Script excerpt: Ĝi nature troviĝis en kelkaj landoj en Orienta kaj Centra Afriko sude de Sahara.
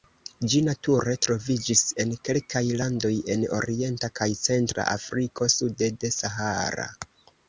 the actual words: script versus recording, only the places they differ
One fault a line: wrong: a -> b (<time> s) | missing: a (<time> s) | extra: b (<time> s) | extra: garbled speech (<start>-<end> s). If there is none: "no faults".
no faults